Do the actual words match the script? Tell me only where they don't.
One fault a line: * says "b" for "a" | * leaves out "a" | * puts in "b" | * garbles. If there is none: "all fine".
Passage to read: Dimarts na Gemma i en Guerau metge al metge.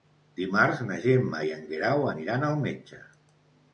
* says "aniran" for "metge"